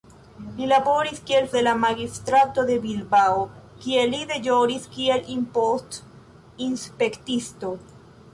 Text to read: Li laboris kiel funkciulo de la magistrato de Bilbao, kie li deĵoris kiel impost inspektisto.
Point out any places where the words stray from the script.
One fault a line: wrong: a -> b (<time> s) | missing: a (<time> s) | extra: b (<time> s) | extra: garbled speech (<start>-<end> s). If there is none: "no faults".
missing: funkciulo (1.5 s)